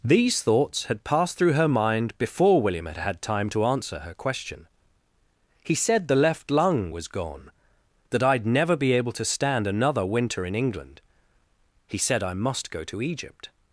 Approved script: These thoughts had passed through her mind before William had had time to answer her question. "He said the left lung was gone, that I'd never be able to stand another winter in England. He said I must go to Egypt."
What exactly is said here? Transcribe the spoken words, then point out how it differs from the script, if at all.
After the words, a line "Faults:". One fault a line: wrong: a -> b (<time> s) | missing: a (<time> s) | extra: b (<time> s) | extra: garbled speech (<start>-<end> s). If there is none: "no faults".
These thoughts had passed through her mind before William had had time to answer her question. "He said the left lung was gone, that I'd never be able to stand another winter in England. He said I must go to Egypt."
Faults:
no faults